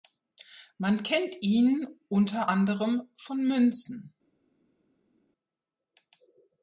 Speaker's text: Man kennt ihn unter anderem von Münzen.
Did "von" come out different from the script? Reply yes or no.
no